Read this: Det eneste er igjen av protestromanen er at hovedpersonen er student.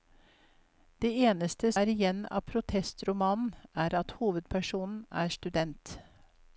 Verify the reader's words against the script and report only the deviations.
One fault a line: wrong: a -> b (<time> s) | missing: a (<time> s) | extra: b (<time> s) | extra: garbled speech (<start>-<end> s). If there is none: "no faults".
no faults